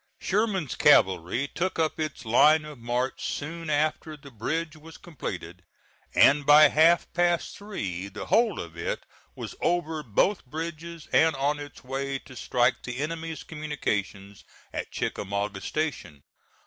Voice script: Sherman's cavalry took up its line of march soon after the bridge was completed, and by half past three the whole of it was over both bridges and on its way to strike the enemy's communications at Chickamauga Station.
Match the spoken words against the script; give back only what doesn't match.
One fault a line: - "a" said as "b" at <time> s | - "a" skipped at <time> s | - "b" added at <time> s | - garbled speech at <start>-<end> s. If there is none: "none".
none